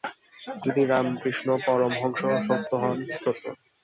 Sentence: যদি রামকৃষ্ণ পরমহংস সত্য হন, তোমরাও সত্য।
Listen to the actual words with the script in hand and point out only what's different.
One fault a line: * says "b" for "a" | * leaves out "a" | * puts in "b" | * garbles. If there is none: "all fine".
* leaves out "তোমরাও"